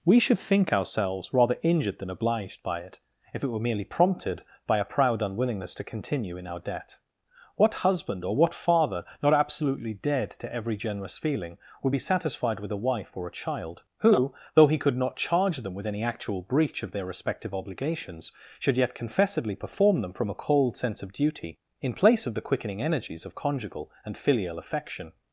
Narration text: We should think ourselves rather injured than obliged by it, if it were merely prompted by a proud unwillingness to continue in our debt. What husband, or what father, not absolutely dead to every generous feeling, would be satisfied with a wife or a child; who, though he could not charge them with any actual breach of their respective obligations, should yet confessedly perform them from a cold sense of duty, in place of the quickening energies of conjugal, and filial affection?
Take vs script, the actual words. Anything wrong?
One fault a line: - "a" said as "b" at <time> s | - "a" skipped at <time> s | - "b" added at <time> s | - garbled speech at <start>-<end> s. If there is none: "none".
none